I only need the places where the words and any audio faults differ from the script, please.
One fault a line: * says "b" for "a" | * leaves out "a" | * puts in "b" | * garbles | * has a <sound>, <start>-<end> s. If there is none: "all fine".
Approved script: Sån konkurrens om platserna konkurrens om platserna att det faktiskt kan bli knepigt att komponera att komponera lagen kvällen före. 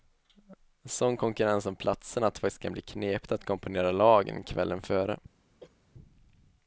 * leaves out "konkurrens om platserna"
* leaves out "att komponera"
* has a cough, 5.6-5.8 s